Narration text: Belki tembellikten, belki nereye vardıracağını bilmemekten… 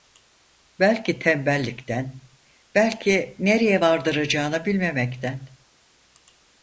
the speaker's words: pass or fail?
pass